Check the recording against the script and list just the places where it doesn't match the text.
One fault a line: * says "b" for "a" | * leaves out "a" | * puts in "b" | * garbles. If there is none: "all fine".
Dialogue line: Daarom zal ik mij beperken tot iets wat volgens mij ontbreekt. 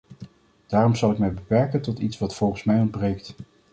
all fine